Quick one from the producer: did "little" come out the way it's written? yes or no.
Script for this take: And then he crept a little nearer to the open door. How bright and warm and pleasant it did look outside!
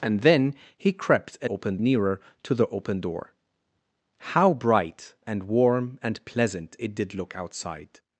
no